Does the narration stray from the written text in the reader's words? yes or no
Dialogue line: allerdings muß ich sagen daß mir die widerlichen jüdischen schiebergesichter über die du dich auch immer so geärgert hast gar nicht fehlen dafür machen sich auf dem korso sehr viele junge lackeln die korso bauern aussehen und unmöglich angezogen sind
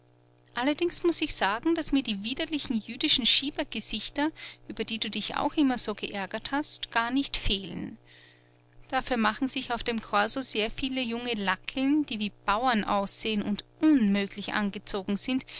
yes